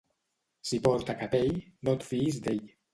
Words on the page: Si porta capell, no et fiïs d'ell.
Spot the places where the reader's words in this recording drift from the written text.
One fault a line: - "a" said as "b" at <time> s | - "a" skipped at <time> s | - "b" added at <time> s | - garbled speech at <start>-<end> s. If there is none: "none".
none